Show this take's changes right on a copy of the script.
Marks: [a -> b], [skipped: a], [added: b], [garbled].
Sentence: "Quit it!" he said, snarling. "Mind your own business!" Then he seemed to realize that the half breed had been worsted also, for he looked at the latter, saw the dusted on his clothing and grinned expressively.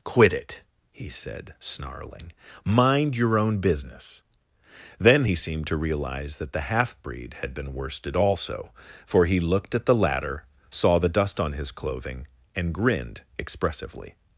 "Quit it!" he said, snarling. "Mind your own business!" Then he seemed to realize that the half breed had been worsted also, for he looked at the latter, saw the [dusted -> dust] on his clothing and grinned expressively.